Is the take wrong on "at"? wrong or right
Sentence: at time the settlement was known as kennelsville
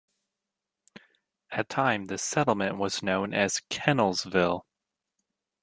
right